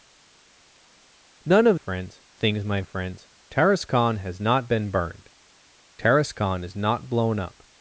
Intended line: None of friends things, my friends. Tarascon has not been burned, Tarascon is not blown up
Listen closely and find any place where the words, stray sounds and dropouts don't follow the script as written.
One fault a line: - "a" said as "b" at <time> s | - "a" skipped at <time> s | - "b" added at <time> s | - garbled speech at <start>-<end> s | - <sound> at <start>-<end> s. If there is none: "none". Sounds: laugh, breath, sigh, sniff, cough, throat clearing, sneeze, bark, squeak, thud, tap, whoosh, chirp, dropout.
none